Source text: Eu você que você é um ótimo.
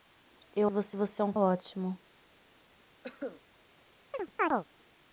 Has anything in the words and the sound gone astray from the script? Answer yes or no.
yes